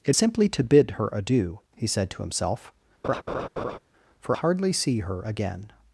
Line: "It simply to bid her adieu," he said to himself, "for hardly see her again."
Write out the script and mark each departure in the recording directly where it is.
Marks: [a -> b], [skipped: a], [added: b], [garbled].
"It simply to bid her adieu," he said to himself, "for hardly see her again."